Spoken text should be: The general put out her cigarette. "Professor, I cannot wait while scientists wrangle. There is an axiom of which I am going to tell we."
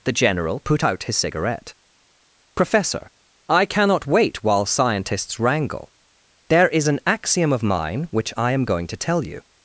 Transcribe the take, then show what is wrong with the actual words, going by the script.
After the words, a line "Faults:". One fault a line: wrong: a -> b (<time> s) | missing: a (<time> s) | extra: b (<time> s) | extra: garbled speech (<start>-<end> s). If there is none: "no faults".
The general put out his cigarette. "Professor, I cannot wait while scientists wrangle. There is an axiom of mine which I am going to tell you."
Faults:
wrong: her -> his (1.0 s)
extra: mine (7.6 s)
wrong: we -> you (9.2 s)